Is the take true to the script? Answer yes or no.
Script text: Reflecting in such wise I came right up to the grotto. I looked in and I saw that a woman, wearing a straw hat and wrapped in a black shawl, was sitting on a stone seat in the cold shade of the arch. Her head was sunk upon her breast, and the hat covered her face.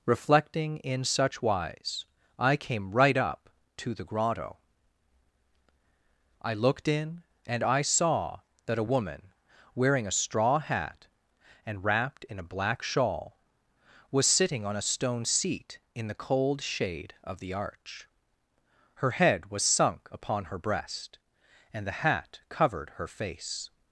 yes